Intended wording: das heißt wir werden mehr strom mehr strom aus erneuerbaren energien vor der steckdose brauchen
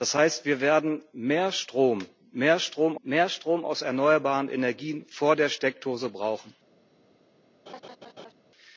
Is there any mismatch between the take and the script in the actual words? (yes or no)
yes